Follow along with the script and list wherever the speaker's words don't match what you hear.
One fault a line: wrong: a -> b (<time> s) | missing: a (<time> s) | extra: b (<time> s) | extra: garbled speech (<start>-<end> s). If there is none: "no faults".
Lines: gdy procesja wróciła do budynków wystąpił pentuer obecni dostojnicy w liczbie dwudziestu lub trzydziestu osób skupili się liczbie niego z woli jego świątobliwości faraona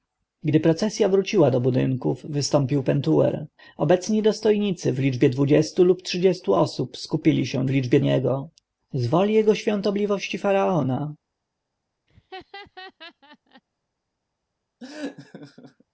no faults